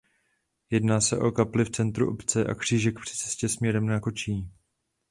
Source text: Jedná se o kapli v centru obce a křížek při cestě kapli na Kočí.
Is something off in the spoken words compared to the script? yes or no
yes